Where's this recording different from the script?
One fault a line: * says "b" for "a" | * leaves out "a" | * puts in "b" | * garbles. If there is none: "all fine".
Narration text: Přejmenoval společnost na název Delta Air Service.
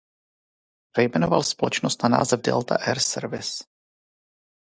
all fine